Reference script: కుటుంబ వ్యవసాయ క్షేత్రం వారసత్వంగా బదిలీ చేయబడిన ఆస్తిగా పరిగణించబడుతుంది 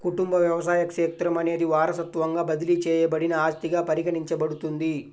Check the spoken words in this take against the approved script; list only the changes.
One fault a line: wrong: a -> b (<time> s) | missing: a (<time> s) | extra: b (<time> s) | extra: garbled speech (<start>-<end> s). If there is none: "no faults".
extra: అనేది (1.4 s)